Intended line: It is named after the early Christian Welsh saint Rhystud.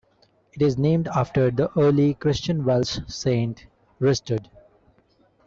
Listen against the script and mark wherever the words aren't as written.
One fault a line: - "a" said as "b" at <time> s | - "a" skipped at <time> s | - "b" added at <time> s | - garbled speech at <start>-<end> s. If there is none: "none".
none